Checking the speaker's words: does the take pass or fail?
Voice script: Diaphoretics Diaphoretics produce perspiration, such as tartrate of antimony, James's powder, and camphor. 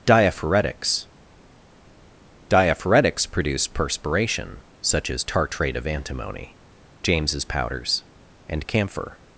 fail